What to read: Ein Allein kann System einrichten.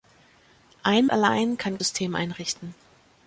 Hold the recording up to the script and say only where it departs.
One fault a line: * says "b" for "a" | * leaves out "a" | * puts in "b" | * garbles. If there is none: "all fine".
all fine